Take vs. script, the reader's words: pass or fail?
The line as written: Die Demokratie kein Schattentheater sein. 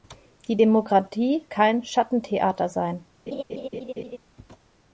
pass